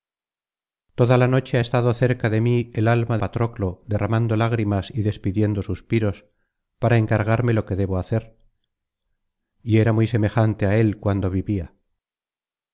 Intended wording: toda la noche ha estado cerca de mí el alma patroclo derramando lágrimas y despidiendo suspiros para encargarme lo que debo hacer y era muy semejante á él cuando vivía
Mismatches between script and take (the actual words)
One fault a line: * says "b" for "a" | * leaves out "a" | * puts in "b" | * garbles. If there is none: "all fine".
all fine